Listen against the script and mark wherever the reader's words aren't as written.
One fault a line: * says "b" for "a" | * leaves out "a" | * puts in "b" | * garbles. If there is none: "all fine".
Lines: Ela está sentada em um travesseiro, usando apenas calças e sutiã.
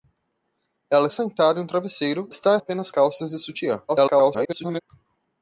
* leaves out "está"
* says "está" for "usando"
* garbles